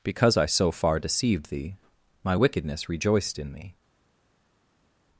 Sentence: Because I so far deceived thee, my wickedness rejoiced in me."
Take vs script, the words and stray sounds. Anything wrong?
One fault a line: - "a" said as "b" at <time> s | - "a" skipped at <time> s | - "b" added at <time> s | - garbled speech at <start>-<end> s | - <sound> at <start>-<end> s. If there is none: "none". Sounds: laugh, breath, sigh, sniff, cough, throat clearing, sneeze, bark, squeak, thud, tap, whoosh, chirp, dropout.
none